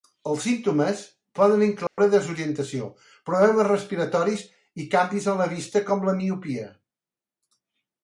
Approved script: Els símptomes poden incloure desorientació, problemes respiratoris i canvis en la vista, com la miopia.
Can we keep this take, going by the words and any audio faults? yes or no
no